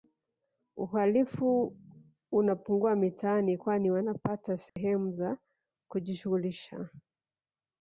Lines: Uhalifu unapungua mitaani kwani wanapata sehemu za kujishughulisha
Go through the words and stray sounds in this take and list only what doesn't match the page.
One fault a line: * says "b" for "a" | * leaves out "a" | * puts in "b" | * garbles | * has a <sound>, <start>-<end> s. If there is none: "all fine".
* has a dropout, 4.7-4.8 s